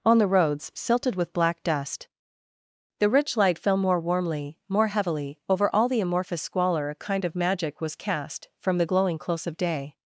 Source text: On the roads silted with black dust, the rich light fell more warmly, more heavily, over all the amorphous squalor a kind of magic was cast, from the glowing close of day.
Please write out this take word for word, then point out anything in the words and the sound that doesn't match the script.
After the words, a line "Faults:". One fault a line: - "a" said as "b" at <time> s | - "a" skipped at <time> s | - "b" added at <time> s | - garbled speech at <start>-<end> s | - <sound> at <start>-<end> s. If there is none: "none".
On the roads silted with black dust, the rich light fell more warmly, more heavily, over all the amorphous squalor a kind of magic was cast, from the glowing close of day.
Faults:
none